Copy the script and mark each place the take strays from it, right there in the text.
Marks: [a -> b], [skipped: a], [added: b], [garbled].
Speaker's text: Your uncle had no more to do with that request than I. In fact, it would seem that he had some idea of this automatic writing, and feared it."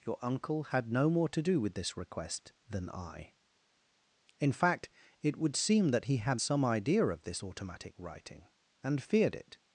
Your uncle had no more to do with [that -> this] request than I. In fact, it would seem that he had some idea of this automatic writing, and feared it."